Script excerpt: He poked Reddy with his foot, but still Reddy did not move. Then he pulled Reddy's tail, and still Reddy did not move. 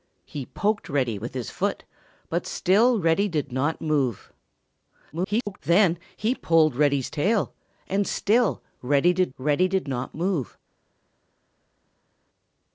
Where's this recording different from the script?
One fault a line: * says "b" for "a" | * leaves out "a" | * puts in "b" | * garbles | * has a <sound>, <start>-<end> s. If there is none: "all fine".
* garbles
* puts in "Reddy did"